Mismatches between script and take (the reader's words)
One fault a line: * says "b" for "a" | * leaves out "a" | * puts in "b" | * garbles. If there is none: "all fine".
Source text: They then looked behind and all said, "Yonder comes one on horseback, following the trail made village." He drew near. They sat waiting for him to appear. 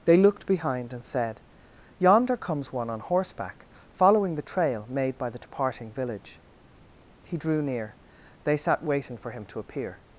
* leaves out "then"
* leaves out "all"
* puts in "by the departing"